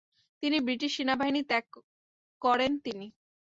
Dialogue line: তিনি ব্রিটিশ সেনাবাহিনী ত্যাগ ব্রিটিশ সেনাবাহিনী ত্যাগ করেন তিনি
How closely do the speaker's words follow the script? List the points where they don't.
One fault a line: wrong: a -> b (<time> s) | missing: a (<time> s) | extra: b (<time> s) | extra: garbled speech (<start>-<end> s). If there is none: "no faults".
missing: ব্রিটিশ সেনাবাহিনী ত্যাগ (1.6 s)